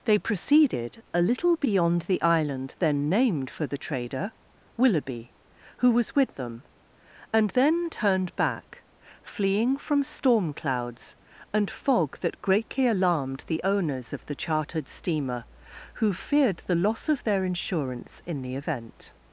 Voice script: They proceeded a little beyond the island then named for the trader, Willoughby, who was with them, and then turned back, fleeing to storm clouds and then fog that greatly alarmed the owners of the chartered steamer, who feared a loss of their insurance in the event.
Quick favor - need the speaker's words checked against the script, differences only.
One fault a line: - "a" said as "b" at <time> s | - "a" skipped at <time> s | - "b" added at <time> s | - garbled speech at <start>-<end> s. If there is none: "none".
- "to" said as "from" at 9.8 s
- "then" skipped at 11.7 s
- "a" said as "the" at 16.6 s